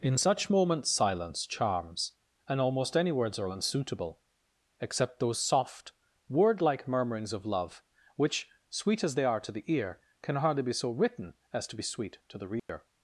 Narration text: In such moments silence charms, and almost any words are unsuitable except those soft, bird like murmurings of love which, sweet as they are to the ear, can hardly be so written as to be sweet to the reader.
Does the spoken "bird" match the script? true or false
false